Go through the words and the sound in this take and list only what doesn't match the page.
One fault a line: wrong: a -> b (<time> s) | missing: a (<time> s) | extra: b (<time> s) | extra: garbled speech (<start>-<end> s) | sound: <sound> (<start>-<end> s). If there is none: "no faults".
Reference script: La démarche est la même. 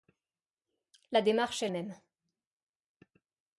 missing: la (1.7 s)